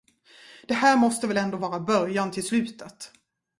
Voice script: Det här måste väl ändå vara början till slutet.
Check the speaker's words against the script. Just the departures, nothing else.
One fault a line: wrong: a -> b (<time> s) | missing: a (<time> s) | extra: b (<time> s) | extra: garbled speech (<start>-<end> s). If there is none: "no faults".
no faults